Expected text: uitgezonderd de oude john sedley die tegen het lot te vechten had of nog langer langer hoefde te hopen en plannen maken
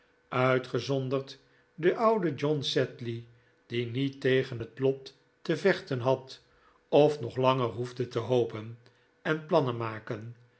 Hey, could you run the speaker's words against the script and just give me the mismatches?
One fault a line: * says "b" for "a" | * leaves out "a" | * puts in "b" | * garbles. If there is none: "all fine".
* puts in "niet"
* leaves out "langer"